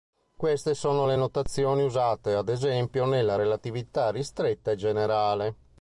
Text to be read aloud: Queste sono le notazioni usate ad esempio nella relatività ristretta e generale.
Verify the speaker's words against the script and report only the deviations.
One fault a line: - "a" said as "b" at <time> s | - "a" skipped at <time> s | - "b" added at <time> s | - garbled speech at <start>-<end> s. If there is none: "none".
none